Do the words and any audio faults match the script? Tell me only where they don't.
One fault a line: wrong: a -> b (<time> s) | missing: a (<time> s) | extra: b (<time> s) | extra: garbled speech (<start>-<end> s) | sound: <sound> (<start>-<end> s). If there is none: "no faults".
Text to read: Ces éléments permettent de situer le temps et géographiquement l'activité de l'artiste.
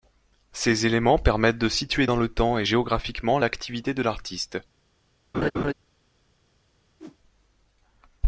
extra: dans (2.0 s)
sound: laugh (5.3-5.7 s)
sound: whoosh (7.0-7.2 s)